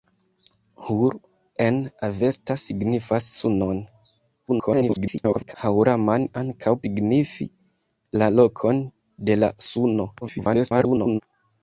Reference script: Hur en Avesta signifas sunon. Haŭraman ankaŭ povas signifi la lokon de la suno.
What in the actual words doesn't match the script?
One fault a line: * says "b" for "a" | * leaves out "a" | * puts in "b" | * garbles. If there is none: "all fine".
* garbles
* leaves out "povas"
* garbles